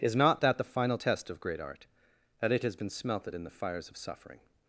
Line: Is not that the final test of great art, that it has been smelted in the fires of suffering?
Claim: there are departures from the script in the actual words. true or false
false